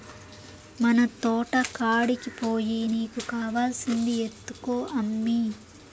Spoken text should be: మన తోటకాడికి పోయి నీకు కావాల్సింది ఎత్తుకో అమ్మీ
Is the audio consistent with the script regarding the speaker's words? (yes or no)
yes